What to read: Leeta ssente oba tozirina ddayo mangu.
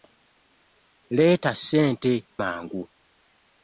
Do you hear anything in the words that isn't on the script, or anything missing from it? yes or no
yes